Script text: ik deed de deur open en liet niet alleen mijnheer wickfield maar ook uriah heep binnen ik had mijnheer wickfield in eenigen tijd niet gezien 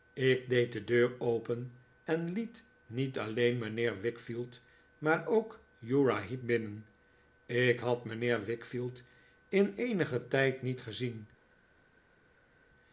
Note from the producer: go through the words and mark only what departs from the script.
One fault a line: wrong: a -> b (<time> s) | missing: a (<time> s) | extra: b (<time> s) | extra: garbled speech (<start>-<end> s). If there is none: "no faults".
no faults